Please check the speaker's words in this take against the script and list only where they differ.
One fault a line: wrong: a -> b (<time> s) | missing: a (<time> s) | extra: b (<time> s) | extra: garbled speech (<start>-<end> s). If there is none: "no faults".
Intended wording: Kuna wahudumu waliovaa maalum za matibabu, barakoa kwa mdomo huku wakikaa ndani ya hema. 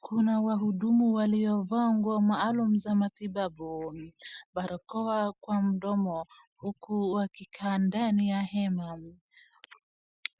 extra: nguo (1.9 s)